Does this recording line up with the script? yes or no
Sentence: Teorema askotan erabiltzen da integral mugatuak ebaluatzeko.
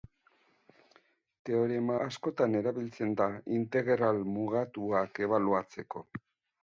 yes